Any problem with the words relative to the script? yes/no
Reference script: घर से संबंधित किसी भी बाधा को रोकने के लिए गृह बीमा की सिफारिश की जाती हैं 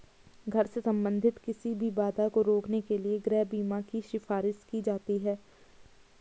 no